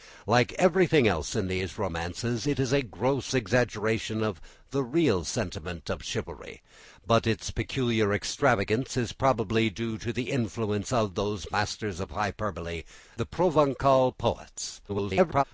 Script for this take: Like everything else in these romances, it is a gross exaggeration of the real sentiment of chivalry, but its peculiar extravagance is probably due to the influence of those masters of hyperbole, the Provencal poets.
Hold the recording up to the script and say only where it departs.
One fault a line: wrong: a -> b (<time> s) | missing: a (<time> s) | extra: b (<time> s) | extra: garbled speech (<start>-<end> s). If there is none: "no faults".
extra: garbled speech (14.9-15.4 s)